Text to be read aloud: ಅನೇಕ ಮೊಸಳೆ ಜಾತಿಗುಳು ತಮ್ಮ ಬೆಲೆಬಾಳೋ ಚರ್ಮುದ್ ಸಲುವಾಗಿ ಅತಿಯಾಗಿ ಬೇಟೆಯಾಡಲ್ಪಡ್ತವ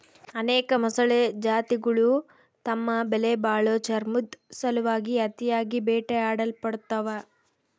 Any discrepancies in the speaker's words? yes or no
no